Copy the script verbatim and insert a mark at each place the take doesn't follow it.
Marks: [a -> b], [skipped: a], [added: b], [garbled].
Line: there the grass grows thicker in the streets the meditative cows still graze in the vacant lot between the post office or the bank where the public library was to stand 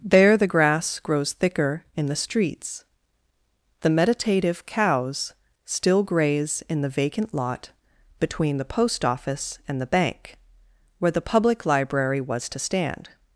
there the grass grows thicker in the streets the meditative cows still graze in the vacant lot between the post office [or -> and] the bank where the public library was to stand